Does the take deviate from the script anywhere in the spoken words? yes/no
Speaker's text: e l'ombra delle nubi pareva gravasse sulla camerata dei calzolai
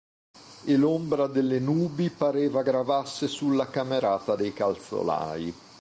no